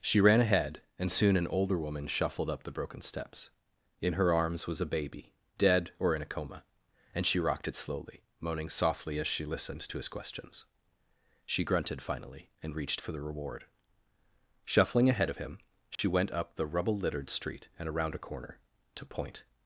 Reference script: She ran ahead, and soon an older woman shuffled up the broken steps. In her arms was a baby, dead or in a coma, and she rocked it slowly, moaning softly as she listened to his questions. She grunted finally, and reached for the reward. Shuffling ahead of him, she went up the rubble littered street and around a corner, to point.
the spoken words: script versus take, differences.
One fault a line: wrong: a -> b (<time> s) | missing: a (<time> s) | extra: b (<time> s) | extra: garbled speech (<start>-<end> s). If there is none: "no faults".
no faults